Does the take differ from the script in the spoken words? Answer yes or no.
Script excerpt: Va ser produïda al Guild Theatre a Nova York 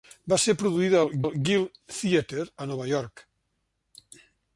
yes